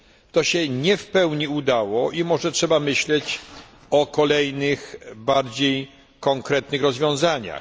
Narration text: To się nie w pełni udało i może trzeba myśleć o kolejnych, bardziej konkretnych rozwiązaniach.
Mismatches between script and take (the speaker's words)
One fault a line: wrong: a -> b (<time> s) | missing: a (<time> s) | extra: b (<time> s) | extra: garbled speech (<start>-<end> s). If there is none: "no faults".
no faults